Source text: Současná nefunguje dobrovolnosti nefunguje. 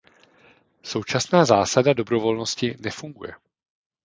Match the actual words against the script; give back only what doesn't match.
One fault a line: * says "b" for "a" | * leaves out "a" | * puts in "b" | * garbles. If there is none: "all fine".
* says "zásada" for "nefunguje"